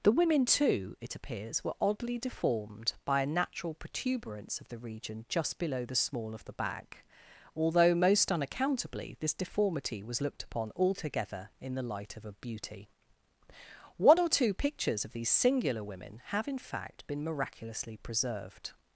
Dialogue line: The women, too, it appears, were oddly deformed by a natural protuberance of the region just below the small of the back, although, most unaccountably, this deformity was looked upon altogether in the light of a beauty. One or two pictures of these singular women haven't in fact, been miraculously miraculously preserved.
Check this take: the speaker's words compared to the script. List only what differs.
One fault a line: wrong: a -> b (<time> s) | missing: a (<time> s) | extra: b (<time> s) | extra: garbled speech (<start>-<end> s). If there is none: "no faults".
wrong: haven't -> have (16.3 s)
missing: miraculously (18.0 s)